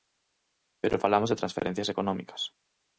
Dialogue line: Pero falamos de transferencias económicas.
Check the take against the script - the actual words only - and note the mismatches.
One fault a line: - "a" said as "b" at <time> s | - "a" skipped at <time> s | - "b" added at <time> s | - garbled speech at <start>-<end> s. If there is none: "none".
none